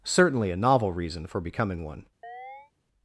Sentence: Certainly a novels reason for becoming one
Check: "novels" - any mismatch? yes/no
yes